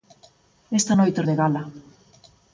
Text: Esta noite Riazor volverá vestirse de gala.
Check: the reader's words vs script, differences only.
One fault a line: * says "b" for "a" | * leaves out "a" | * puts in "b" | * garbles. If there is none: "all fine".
* leaves out "Riazor volverá vestirse"